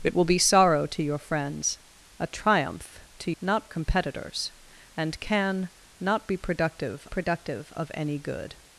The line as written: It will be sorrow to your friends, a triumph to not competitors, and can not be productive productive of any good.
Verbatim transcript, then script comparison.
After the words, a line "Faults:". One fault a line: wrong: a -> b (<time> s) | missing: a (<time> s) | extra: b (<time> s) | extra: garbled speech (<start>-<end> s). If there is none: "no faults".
It will be sorrow to your friends, a triumph to not competitors, and can not be productive productive of any good.
Faults:
no faults